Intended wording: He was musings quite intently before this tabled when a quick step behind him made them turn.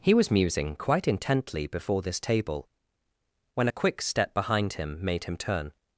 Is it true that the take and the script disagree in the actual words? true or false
true